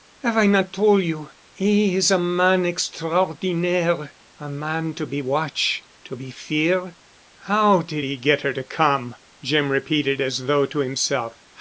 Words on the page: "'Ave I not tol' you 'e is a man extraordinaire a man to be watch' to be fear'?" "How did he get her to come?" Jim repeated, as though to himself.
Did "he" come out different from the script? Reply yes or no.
no